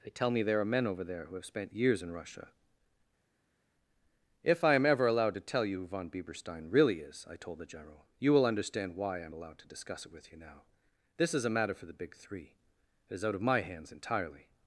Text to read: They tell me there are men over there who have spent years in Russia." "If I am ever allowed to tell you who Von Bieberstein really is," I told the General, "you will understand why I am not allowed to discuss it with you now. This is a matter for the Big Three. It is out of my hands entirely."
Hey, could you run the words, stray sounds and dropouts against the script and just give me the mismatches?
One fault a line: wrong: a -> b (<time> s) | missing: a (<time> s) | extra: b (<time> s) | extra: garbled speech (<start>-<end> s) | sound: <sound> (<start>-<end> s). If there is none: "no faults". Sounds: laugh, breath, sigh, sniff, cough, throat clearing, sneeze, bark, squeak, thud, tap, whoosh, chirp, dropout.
missing: not (9.3 s)